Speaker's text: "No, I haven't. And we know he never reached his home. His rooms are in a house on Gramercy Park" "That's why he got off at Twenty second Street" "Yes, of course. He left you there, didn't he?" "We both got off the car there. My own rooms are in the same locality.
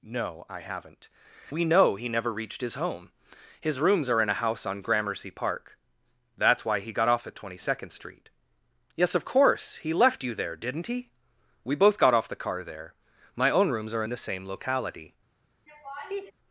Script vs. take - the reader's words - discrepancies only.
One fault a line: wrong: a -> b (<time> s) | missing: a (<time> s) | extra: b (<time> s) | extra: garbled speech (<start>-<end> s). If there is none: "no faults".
missing: And (1.1 s)